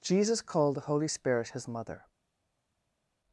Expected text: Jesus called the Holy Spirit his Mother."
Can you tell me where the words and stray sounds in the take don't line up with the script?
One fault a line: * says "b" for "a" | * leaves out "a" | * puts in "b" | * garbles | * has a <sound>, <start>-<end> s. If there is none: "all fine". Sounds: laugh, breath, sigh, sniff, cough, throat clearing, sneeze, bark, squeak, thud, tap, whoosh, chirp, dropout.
all fine